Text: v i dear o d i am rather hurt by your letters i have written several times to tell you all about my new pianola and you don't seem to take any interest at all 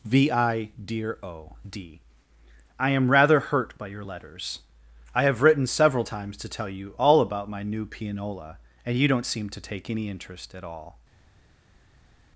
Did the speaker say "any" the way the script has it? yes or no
yes